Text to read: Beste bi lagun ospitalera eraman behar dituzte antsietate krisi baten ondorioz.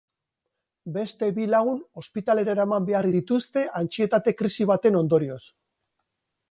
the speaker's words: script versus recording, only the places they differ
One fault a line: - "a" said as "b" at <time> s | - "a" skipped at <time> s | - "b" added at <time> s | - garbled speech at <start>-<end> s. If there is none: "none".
none